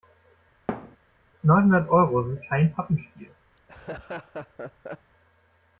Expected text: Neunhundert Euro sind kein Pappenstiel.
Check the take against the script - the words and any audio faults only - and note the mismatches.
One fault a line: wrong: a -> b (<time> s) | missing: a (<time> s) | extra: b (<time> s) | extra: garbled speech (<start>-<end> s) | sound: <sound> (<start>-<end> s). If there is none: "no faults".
sound: thud (0.7-1.0 s)
sound: laugh (3.6-5.1 s)